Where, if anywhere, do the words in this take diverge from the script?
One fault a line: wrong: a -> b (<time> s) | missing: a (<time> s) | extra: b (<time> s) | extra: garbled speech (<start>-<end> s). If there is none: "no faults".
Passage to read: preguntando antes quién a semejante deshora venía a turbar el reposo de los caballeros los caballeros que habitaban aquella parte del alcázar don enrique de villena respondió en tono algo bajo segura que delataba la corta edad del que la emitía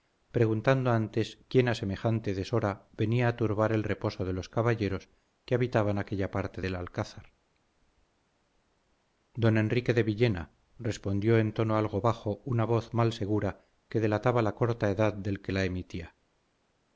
missing: los caballeros (5.1 s)
extra: una voz mal (12.4 s)